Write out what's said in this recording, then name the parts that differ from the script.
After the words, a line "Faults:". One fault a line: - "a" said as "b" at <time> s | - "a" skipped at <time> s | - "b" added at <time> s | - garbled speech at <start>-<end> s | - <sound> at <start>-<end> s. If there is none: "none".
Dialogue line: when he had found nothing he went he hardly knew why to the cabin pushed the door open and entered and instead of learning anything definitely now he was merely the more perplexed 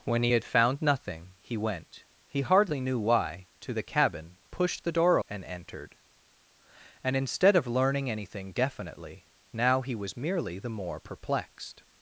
when he had found nothing he went he hardly knew why to the cabin pushed the door and entered and instead of learning anything definitely now he was merely the more perplexed
Faults:
- "open" skipped at 5.2 s